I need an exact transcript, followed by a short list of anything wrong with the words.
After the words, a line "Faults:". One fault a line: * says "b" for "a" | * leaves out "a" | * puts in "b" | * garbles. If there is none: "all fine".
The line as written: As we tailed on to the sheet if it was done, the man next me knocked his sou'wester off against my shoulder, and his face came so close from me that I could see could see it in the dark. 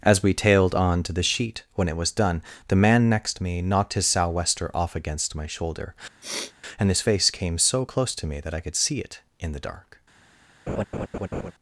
As we tailed on to the sheet when it was done, the man next me knocked his sou'wester off against my shoulder, and his face came so close to me that I could see it in the dark.
Faults:
* says "when" for "if"
* says "to" for "from"
* leaves out "could see"